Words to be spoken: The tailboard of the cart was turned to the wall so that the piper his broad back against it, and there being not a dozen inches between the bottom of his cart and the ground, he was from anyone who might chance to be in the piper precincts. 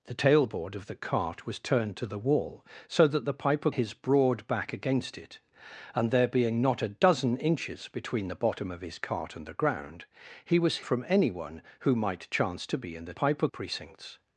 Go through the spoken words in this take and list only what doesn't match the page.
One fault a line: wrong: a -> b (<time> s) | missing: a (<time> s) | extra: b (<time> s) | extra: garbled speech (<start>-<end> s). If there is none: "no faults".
no faults